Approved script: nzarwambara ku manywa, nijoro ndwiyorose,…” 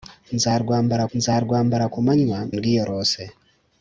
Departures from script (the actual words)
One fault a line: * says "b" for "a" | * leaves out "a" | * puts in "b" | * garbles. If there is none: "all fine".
* puts in "nzarwambara"
* leaves out "nijoro"